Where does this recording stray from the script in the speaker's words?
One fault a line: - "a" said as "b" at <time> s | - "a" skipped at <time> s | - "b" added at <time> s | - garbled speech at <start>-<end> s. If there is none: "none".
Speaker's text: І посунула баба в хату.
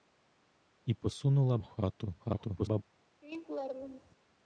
- "баба" skipped at 1.6 s
- garbled speech at 2.2-2.8 s